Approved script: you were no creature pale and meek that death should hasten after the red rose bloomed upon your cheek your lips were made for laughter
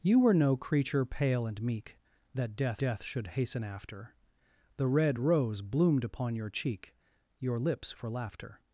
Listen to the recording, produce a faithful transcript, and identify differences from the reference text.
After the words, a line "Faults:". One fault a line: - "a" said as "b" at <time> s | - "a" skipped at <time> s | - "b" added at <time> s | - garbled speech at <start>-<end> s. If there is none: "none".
you were no creature pale and meek that death death should hasten after the red rose bloomed upon your cheek your lips for laughter
Faults:
- "death" added at 2.8 s
- "were made" skipped at 8.0 s